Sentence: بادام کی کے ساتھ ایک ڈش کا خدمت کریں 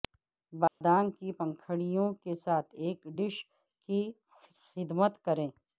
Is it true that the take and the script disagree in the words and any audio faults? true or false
true